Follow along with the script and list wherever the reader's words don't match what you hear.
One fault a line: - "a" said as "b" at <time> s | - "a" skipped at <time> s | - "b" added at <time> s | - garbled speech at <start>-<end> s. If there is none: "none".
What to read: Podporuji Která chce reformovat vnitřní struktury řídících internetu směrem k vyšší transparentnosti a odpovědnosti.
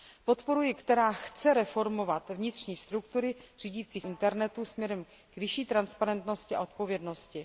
none